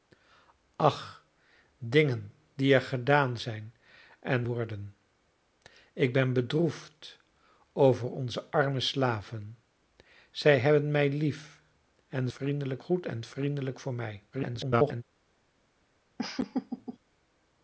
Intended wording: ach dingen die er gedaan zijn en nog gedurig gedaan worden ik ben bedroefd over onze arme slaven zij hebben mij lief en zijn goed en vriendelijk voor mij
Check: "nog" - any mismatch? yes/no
yes